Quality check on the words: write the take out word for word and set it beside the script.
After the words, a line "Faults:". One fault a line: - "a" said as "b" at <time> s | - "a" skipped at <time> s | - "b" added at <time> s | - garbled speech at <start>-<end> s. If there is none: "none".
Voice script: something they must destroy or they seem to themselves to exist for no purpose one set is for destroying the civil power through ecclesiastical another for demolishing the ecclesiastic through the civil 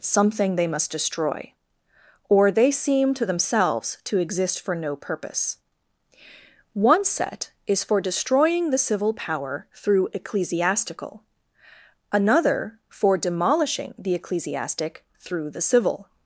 something they must destroy or they seem to themselves to exist for no purpose one set is for destroying the civil power through ecclesiastical another for demolishing the ecclesiastic through the civil
Faults:
none